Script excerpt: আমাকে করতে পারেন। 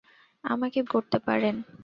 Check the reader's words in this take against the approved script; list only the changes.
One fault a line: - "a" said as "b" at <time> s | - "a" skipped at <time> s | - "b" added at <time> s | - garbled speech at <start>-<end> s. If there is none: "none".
none